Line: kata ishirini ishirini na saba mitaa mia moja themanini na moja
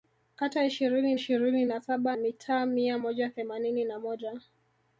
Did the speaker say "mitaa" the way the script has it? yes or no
yes